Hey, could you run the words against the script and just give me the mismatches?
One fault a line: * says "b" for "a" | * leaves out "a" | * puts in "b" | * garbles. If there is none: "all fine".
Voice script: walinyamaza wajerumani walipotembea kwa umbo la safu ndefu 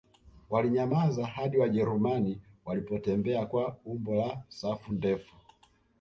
* puts in "hadi"